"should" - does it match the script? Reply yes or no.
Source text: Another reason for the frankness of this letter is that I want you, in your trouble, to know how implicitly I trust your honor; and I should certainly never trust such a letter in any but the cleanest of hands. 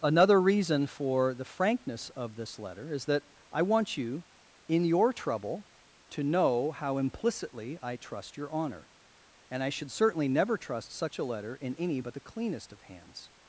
yes